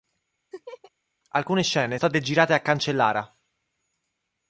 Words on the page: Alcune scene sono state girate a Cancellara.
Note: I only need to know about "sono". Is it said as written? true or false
false